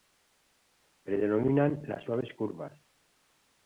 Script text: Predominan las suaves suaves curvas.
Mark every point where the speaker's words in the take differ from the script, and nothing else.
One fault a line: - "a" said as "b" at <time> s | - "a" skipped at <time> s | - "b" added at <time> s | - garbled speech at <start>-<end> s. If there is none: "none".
- "suaves" skipped at 2.3 s